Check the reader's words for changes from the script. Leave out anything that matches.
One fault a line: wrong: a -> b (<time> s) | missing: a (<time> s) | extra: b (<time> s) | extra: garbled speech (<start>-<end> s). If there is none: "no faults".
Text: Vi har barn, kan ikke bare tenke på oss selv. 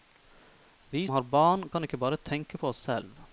no faults